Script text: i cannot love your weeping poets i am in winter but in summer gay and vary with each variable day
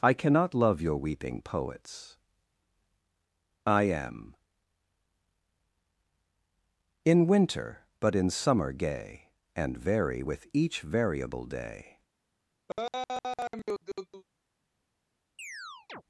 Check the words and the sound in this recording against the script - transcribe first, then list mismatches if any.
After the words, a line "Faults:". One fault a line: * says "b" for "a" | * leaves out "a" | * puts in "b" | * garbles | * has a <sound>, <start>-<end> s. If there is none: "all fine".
i cannot love your weeping poets i am in winter but in summer gay and vary with each variable day
Faults:
* has a laugh, 12.7-14.2 s
* has a chirp, 15.4-16.0 s